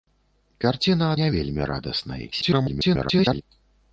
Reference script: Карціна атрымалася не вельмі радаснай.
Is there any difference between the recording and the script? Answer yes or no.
yes